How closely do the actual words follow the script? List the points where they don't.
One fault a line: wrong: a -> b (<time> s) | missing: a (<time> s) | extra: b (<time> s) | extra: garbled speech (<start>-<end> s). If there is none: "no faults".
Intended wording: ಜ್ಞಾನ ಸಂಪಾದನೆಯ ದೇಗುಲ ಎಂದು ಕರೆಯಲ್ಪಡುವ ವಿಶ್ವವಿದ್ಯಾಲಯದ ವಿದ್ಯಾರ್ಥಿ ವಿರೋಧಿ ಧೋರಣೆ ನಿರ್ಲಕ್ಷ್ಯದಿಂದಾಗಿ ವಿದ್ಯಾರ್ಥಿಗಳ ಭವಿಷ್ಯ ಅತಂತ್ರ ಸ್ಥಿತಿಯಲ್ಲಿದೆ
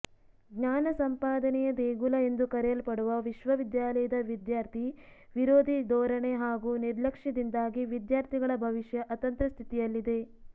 extra: ಹಾಗೂ (6.4 s)